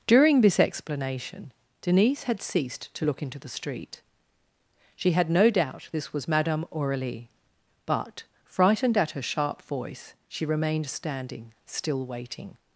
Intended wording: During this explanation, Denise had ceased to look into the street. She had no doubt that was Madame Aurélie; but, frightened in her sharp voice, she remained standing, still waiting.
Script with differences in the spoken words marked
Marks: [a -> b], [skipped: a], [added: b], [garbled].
During this explanation, Denise had ceased to look into the street. She had no doubt [that -> this] was Madame Aurélie; but, frightened [in -> at] her sharp voice, she remained standing, still waiting.